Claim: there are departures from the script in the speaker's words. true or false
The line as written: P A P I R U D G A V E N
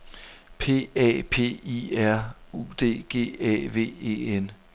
false